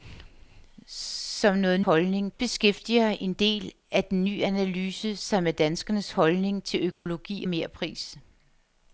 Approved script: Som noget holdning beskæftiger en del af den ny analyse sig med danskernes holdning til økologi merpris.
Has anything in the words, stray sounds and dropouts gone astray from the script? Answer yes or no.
yes